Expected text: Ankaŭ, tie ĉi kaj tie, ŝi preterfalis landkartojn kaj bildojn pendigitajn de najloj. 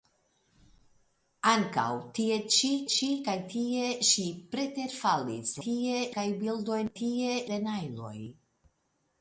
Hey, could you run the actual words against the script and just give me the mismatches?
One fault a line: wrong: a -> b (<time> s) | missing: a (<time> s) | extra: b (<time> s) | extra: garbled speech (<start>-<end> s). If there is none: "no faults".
extra: ĉi (2.9 s)
wrong: landkartojn -> tie (5.6 s)
wrong: pendigitajn -> tie (7.0 s)